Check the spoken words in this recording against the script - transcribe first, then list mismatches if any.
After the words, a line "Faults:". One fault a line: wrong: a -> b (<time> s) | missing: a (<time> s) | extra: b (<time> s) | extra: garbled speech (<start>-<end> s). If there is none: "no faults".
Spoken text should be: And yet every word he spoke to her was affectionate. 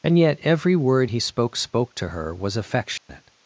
And yet every word he spoke spoke to her was affectionate.
Faults:
extra: spoke (1.6 s)